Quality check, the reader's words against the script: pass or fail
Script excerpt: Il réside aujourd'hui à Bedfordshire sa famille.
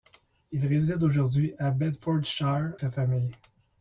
pass